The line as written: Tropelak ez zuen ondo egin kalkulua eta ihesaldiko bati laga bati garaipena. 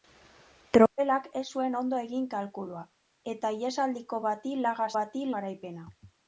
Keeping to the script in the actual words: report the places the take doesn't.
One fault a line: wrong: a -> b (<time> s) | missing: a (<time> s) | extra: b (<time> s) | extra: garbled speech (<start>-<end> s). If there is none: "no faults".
no faults